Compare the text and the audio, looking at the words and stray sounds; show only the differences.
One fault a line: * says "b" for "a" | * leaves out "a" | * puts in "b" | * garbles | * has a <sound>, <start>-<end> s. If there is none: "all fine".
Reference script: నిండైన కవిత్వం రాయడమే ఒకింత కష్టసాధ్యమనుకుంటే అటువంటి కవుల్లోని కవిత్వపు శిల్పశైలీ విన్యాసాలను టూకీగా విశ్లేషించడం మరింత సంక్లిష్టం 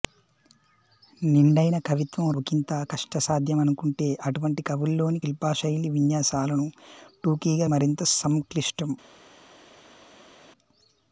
* leaves out "రాయడమే"
* leaves out "కవిత్వపు"
* leaves out "విశ్లేషించడం"